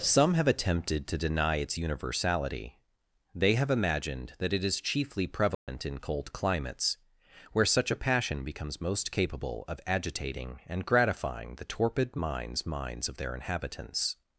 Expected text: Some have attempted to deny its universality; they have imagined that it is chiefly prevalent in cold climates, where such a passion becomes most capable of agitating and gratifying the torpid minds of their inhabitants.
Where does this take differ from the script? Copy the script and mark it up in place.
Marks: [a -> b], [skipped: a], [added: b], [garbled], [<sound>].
Some have attempted to deny its universality; they have imagined that it is chiefly prevalent [dropout] in cold climates, where such a passion becomes most capable of agitating and gratifying the torpid minds [added: minds] of their inhabitants.